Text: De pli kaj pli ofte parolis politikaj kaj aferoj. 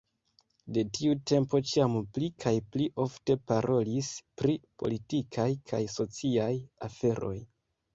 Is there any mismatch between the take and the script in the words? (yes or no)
yes